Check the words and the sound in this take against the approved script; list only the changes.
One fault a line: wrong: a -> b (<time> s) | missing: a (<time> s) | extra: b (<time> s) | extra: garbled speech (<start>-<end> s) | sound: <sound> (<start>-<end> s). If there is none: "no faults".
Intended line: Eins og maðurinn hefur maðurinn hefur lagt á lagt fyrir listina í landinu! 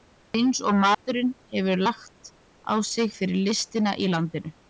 sound: dropout (0.9-1.1 s)
missing: maðurinn hefur (1.8 s)
wrong: lagt -> sig (2.9 s)